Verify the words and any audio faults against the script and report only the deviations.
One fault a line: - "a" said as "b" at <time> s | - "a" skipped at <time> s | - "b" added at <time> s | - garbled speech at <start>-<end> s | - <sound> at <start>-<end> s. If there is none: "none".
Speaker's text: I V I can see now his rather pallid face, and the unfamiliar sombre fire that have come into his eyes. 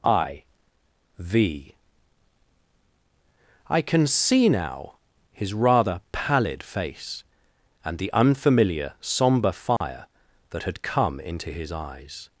- dropout at 9.8-9.8 s
- "have" said as "had" at 10.6 s